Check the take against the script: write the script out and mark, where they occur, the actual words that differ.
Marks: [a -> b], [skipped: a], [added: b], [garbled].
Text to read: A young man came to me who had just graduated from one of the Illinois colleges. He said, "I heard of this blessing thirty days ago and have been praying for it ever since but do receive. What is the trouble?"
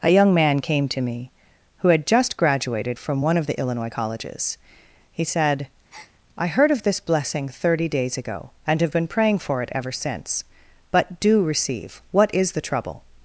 A young man came to me who had just graduated from one of the Illinois colleges. He said, "I heard of this blessing thirty days ago and have been praying for it ever since but do receive. What is the trouble?"